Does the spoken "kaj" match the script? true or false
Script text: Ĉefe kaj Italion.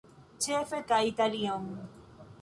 true